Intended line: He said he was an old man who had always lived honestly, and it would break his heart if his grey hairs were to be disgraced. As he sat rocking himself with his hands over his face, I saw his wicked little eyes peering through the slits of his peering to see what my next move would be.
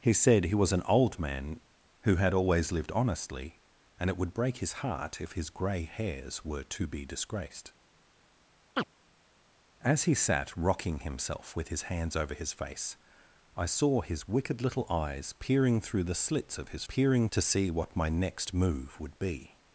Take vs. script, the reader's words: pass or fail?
pass